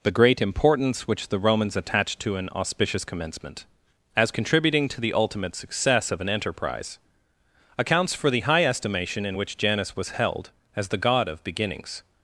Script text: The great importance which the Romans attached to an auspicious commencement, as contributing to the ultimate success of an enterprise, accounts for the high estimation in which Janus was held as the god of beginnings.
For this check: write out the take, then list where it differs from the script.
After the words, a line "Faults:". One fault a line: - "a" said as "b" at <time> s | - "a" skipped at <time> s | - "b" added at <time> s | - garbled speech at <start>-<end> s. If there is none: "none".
The great importance which the Romans attached to an auspicious commencement, as contributing to the ultimate success of an enterprise, accounts for the high estimation in which Janus was held as the god of beginnings.
Faults:
none